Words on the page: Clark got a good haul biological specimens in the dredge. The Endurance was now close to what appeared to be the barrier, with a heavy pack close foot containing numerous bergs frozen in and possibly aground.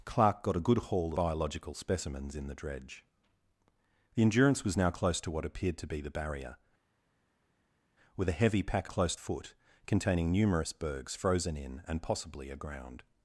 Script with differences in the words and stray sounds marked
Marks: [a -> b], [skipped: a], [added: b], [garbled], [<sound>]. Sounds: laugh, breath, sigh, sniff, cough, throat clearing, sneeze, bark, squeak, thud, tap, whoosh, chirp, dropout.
Clark got a good haul biological specimens in the dredge. The Endurance was now close to what appeared to be the barrier, with a heavy pack close foot containing numerous bergs frozen in and possibly aground.